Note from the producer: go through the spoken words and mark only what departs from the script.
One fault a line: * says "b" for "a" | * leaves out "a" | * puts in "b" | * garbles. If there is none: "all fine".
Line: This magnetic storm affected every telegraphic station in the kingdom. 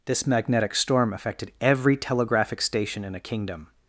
* says "a" for "the"